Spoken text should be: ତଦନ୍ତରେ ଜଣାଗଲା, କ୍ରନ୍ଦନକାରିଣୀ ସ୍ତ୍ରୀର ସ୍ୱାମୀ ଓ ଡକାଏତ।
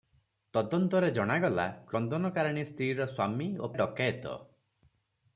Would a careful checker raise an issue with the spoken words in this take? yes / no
no